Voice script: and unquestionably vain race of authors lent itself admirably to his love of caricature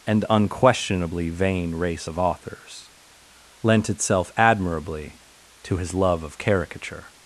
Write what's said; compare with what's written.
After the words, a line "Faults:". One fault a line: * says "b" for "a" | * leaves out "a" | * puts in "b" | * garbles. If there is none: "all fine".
and unquestionably vain race of authors lent itself admirably to his love of caricature
Faults:
all fine